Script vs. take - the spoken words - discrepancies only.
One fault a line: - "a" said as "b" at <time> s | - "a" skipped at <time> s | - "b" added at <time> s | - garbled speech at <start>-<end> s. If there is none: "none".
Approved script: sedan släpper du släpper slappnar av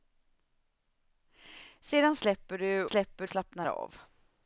none